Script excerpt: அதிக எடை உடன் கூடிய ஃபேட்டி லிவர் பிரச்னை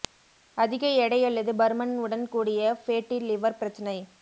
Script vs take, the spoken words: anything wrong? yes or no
yes